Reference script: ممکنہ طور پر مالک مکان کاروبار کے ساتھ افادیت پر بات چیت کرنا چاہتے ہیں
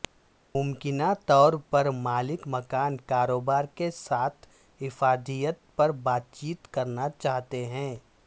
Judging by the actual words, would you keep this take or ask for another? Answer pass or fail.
pass